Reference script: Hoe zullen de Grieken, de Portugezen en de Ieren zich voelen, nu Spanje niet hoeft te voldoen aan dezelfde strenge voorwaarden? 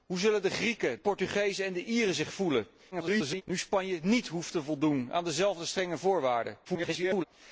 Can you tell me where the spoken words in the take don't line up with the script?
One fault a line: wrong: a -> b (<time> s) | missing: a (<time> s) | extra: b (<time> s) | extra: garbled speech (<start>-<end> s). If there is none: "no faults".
missing: de (1.0 s)
extra: garbled speech (2.9-3.4 s)
extra: garbled speech (6.6-7.2 s)